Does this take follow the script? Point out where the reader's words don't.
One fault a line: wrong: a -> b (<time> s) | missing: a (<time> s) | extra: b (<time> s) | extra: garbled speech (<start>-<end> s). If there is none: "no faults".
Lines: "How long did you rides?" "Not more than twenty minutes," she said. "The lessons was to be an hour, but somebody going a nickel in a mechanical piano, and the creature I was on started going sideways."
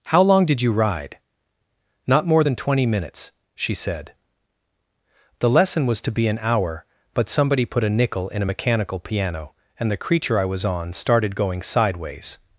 wrong: rides -> ride (0.7 s)
wrong: lessons -> lesson (5.5 s)
wrong: going -> put (7.6 s)